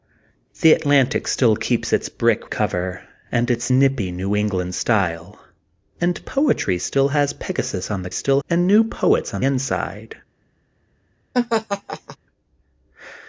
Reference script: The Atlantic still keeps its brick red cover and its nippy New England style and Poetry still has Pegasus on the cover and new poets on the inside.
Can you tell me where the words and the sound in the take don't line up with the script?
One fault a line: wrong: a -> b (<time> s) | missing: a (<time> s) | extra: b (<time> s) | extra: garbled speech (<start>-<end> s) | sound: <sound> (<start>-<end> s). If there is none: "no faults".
missing: red (2.5 s)
wrong: cover -> still (8.1 s)
missing: the (9.4 s)
sound: laugh (11.3-12.2 s)